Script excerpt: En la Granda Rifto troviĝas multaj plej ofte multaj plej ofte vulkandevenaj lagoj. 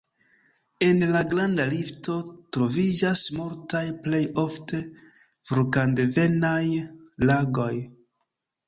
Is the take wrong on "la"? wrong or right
right